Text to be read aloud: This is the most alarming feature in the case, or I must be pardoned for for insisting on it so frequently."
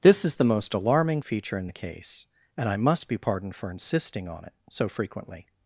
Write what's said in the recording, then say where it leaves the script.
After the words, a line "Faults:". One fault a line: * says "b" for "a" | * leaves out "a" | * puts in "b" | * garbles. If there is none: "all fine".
This is the most alarming feature in the case, and I must be pardoned for insisting on it so frequently."
Faults:
* says "and" for "or"
* leaves out "for"